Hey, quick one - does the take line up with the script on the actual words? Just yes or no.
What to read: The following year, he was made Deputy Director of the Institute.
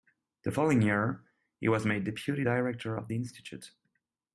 yes